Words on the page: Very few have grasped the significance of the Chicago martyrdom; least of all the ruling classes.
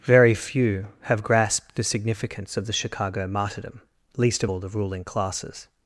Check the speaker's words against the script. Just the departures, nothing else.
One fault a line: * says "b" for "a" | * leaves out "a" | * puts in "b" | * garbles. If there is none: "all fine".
all fine